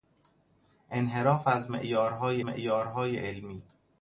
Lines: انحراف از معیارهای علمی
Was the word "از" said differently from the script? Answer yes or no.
no